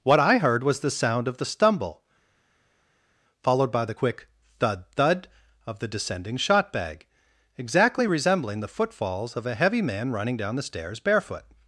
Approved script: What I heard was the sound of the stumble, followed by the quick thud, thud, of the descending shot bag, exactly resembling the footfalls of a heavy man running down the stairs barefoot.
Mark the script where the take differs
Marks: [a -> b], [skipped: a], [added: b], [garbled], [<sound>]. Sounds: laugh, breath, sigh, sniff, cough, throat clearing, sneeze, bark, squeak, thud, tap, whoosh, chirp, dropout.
What I heard was the sound of the stumble, followed by the quick thud, thud, of the descending shot bag, exactly resembling the footfalls of a heavy man running down the stairs barefoot.